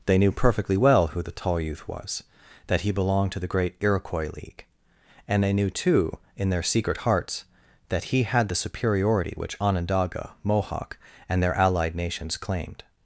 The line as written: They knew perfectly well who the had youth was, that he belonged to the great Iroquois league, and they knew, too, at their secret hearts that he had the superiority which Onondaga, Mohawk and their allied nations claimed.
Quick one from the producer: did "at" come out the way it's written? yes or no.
no